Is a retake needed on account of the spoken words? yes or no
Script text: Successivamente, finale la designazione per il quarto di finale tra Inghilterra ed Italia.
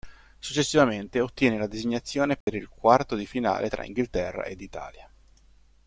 yes